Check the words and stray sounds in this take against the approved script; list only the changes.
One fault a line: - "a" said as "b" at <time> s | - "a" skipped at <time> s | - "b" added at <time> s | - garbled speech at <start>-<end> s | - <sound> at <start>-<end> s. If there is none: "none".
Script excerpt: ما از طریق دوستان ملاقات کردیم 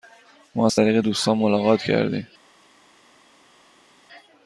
none